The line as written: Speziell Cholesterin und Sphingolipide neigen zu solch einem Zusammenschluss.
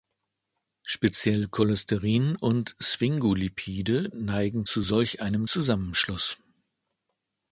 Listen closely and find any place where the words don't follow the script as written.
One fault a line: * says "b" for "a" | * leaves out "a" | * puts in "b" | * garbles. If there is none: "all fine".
all fine